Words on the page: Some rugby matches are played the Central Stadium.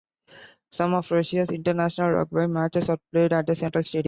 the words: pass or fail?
fail